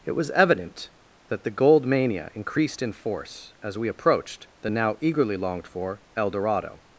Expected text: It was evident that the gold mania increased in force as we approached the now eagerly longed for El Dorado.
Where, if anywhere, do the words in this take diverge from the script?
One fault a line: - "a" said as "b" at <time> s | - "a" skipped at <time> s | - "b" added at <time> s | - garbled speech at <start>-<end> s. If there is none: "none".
none